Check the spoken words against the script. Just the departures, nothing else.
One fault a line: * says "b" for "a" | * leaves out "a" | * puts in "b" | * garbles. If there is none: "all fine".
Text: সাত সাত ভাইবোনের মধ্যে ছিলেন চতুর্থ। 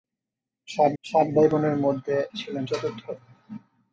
all fine